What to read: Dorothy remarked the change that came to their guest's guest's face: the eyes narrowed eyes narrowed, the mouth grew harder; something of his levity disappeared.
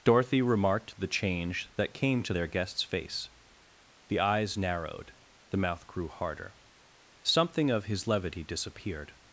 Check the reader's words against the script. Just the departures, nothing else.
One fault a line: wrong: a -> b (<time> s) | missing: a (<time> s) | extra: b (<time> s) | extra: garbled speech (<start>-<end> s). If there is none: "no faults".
missing: guest's (2.8 s)
missing: eyes narrowed (5.1 s)